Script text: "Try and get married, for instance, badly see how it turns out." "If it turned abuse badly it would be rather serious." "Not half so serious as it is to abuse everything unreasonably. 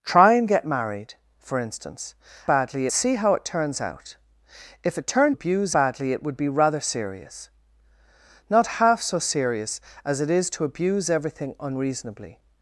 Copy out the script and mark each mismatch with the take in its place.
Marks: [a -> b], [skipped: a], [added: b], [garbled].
"Try and get married, for instance, badly see how it turns out." "If it turned abuse badly it would be rather serious." "Not half so serious as it is to abuse everything unreasonably.